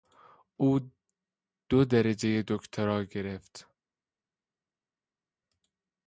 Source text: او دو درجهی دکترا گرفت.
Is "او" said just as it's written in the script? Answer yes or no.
yes